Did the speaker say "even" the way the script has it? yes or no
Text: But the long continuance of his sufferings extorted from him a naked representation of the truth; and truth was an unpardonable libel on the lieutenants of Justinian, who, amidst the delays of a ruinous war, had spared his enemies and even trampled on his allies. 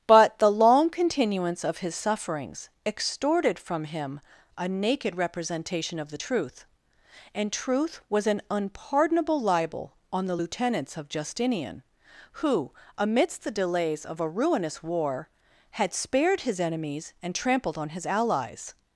no